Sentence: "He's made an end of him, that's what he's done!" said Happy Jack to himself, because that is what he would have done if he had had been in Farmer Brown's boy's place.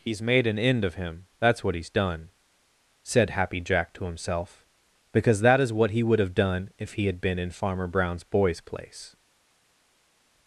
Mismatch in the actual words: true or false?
true